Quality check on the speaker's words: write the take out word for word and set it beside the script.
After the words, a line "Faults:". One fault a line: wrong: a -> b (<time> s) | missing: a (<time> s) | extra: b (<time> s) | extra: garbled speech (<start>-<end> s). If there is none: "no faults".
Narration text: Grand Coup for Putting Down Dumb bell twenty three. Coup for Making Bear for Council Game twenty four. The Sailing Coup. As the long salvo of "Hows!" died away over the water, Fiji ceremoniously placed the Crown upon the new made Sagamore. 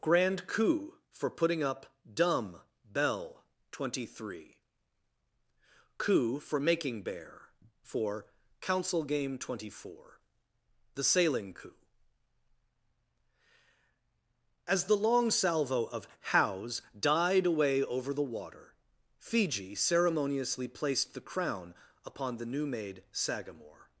Grand Coup for Putting Up Dumb bell twenty three. Coup for Making Bear for Council Game twenty four. The Sailing Coup. As the long salvo of "Hows!" died away over the water, Fiji ceremoniously placed the Crown upon the new made Sagamore.
Faults:
wrong: Down -> Up (1.6 s)